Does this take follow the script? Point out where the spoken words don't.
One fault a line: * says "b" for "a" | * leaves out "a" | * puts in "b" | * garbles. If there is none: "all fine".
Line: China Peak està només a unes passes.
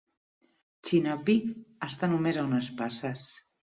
all fine